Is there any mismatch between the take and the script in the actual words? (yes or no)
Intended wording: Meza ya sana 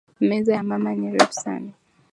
yes